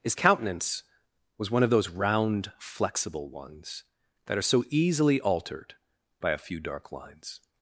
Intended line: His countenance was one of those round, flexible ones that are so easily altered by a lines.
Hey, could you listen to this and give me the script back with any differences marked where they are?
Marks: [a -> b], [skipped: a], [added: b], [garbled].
His countenance was one of those round, flexible ones that are so easily altered by a [added: few dark] lines.